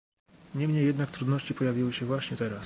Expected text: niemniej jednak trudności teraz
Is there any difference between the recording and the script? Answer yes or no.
yes